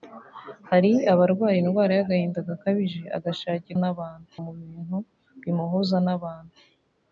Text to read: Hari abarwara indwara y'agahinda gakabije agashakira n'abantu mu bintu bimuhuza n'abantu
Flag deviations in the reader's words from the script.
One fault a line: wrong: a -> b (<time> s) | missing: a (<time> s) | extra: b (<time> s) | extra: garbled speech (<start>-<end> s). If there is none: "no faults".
no faults